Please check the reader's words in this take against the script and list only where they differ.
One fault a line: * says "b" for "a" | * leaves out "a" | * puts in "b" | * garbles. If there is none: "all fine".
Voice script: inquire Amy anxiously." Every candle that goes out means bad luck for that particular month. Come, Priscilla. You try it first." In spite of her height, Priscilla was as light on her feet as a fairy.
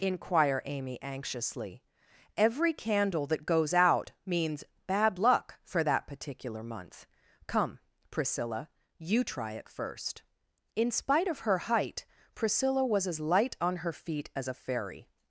all fine